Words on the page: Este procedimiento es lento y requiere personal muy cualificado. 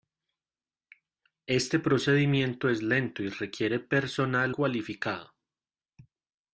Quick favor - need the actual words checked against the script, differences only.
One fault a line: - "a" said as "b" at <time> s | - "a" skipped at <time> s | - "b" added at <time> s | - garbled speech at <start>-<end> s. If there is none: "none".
- "muy" skipped at 4.5 s